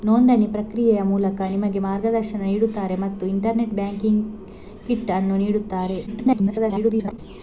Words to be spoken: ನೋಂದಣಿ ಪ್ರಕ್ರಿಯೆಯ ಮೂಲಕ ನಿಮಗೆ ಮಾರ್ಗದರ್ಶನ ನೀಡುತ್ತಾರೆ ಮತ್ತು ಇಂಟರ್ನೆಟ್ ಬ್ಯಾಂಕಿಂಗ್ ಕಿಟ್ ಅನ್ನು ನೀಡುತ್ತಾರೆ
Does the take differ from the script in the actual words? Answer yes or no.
yes